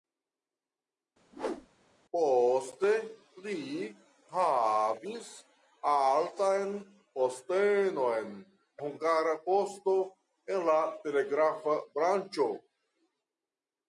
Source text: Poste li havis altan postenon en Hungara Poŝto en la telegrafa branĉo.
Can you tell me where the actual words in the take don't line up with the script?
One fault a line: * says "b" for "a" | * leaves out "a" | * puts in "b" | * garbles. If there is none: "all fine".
* leaves out "en"